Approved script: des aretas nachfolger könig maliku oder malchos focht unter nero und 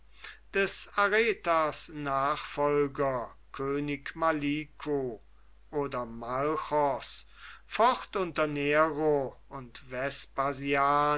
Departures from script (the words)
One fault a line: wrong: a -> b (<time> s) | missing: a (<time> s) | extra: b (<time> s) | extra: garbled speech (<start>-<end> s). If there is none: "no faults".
no faults